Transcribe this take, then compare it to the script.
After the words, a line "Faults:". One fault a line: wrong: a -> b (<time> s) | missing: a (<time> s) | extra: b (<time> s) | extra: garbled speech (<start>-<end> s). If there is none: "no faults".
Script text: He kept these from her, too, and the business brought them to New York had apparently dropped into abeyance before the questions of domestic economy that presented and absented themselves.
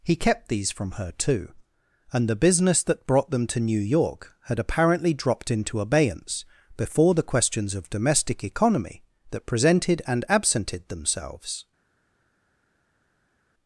He kept these from her, too, and the business that brought them to New York had apparently dropped into abeyance before the questions of domestic economy that presented and absented themselves.
Faults:
extra: that (2.8 s)